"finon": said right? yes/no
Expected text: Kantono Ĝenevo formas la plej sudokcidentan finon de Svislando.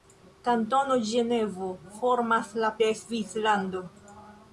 no